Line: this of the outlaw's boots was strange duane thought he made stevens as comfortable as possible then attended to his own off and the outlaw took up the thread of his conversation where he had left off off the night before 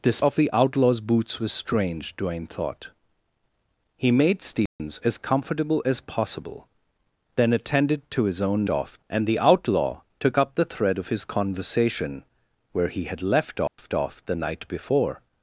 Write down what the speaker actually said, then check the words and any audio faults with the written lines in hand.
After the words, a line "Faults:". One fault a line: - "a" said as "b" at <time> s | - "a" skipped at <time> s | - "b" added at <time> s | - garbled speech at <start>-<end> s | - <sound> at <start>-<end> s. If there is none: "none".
this of the outlaw's boots was strange duane thought he made stevens as comfortable as possible then attended to his own off and the outlaw took up the thread of his conversation where he had left off off the night before
Faults:
- dropout at 4.7-4.8 s
- dropout at 13.7-13.8 s